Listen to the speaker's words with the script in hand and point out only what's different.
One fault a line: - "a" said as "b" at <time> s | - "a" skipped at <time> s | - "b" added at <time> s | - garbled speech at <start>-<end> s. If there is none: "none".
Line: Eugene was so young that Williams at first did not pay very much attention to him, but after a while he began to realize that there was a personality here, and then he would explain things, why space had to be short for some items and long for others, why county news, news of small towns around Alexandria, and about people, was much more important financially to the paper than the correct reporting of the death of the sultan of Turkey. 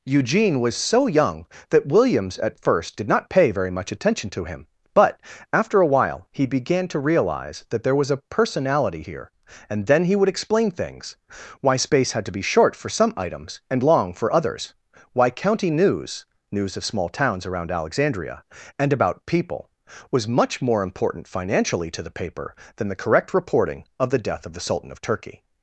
none